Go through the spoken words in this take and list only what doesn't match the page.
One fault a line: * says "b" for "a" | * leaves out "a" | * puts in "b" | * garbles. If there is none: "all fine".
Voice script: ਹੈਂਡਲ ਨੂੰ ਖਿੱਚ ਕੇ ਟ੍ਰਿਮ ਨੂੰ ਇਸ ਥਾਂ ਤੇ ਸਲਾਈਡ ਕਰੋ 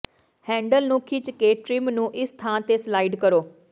all fine